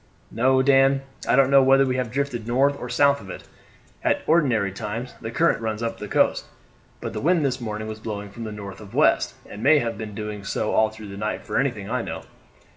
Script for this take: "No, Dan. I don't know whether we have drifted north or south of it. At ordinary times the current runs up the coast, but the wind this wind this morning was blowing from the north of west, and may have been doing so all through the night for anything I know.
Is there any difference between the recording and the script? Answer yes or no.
yes